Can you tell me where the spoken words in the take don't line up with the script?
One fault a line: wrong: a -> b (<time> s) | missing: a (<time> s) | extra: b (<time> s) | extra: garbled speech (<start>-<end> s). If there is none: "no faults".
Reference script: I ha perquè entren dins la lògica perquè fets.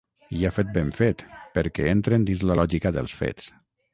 extra: fet ben fet (0.6 s)
wrong: perquè -> dels (3.0 s)